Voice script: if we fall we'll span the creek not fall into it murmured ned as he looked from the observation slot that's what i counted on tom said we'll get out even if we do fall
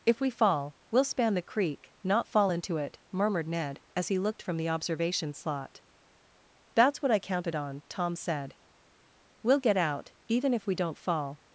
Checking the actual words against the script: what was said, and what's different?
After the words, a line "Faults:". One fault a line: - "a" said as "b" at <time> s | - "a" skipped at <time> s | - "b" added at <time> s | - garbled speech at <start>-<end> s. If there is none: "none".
if we fall we'll span the creek not fall into it murmured ned as he looked from the observation slot that's what i counted on tom said we'll get out even if we don't fall
Faults:
- "do" said as "don't" at 10.7 s